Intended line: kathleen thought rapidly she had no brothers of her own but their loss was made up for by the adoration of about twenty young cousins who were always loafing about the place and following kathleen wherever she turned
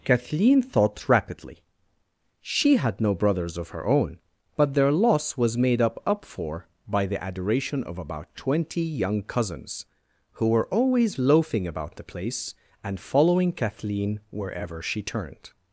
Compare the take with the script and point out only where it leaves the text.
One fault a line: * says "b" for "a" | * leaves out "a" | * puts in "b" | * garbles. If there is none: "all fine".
* puts in "up"